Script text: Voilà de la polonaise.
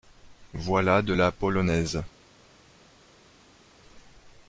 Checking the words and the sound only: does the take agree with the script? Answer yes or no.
yes